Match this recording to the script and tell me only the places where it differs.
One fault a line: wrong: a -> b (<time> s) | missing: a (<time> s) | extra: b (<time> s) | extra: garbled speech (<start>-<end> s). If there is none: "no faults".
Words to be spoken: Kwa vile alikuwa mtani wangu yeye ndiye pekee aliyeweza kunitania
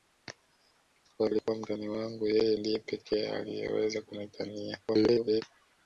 missing: vile (1.3 s)
extra: garbled speech (4.9-5.4 s)